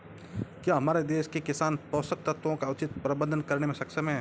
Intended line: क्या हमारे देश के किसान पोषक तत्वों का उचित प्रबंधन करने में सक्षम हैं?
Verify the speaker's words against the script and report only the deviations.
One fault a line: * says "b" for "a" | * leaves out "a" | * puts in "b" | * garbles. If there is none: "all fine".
all fine